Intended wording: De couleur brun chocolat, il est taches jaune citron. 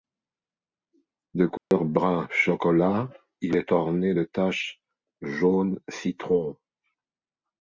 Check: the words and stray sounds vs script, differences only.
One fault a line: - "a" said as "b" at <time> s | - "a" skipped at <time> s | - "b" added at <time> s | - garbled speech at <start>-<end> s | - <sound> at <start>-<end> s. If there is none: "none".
- dropout at 1.6-1.7 s
- "orné de" added at 3.7 s